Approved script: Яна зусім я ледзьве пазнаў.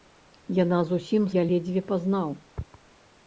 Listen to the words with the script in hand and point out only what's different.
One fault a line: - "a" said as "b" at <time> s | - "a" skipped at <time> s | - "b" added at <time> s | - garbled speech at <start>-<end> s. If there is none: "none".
none